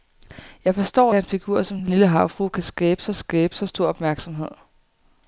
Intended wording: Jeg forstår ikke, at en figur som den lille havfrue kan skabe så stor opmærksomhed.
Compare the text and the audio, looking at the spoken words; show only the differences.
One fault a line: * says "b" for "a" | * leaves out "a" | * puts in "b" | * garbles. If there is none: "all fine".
* leaves out "ikke"
* puts in "skabe så"